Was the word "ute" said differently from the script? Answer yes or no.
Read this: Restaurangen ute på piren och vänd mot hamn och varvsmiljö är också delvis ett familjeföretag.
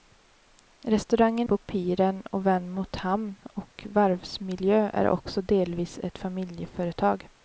yes